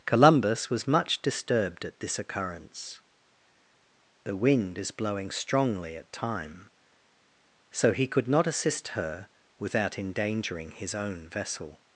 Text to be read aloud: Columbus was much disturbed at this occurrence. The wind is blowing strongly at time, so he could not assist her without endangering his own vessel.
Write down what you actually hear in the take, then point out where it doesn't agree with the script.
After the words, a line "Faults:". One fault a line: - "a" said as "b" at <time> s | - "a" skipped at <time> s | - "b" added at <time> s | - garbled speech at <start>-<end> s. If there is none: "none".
Columbus was much disturbed at this occurrence. The wind is blowing strongly at time, so he could not assist her without endangering his own vessel.
Faults:
none